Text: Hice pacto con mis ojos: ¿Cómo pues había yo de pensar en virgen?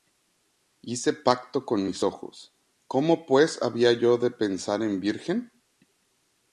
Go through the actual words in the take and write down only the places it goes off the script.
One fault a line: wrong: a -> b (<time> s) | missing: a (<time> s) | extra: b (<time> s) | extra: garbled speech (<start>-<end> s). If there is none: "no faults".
no faults